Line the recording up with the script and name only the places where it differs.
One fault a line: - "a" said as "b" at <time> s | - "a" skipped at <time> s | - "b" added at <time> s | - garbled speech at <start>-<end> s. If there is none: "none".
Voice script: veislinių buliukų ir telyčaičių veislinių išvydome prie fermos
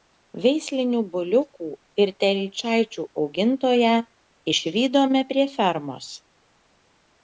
- "veislinių" said as "augintoją" at 3.3 s